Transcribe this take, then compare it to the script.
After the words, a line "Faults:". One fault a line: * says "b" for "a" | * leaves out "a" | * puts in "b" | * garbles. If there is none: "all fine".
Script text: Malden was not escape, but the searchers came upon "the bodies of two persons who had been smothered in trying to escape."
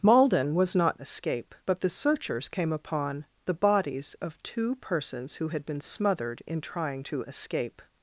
Malden was not escape, but the searchers came upon "the bodies of two persons who had been smothered in trying to escape."
Faults:
all fine